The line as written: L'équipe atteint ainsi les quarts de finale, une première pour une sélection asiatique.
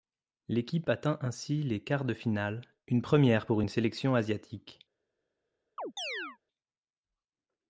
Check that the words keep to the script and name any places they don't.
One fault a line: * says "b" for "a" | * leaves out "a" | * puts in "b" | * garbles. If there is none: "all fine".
all fine